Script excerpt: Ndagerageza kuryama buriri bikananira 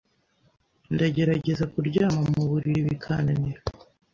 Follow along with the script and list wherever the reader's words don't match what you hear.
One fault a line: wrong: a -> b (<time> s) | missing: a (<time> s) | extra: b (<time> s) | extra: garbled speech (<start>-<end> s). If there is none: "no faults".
extra: mu (2.3 s)